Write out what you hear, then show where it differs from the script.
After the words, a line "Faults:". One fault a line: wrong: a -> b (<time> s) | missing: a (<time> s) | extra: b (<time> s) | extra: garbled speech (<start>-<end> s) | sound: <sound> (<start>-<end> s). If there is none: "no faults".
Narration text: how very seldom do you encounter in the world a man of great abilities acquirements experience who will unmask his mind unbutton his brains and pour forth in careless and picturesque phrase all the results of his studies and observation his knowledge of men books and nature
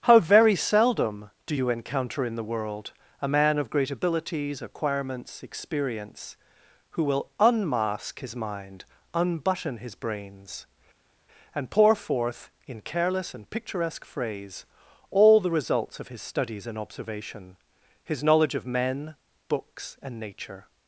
how very seldom do you encounter in the world a man of great abilities acquirements experience who will unmask his mind unbutton his brains and pour forth in careless and picturesque phrase all the results of his studies and observation his knowledge of men books and nature
Faults:
no faults